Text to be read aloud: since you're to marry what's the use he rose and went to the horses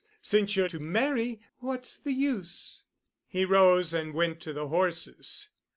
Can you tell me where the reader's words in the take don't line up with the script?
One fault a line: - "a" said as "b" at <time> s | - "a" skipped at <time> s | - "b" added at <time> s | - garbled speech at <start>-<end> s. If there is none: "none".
none